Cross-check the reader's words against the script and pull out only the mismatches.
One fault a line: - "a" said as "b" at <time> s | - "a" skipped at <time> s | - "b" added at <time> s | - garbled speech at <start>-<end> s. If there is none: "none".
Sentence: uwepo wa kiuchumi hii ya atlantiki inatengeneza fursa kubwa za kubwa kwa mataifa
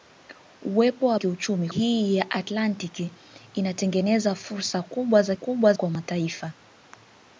none